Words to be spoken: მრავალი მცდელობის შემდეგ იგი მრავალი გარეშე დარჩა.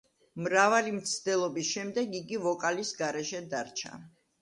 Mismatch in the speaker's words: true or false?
true